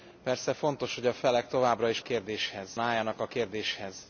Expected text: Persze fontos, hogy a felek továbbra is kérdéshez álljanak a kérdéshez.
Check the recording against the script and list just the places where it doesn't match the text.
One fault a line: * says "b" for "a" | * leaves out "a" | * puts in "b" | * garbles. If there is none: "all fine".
all fine